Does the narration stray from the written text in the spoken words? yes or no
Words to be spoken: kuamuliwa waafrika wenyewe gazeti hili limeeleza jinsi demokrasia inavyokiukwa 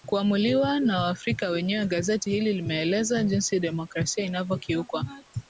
yes